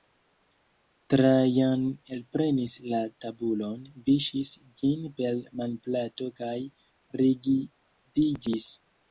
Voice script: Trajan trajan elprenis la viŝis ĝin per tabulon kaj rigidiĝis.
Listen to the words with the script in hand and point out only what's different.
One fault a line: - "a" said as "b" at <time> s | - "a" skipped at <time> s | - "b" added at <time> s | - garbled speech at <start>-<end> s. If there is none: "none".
- "trajan" skipped at 1.8 s
- "tabulon" added at 3.2 s
- "tabulon" said as "manplato" at 5.6 s